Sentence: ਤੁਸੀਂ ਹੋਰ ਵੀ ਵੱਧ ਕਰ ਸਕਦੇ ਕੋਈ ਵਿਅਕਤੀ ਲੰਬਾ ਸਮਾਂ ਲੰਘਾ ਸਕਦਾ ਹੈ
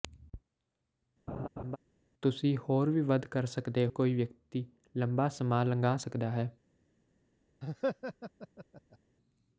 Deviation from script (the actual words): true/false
false